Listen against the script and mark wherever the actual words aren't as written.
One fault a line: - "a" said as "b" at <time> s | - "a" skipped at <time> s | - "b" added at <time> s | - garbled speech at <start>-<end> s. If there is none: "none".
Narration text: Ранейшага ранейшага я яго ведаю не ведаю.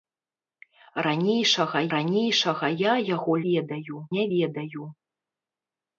none